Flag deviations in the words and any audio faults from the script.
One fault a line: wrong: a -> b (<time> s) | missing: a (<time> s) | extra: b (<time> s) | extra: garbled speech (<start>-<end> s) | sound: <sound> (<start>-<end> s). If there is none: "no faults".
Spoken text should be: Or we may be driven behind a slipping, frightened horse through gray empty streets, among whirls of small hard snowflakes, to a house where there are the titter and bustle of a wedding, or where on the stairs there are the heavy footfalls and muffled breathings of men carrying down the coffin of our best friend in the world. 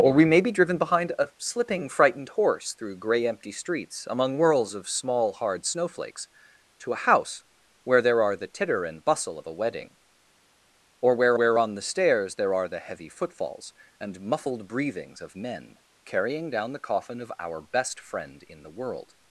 extra: where (11.3 s)